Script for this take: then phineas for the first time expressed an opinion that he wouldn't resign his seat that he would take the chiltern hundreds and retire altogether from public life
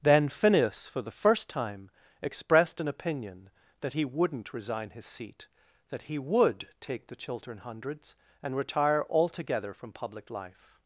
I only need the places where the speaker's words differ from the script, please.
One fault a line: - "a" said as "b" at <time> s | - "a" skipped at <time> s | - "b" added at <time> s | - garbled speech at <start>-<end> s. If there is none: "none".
none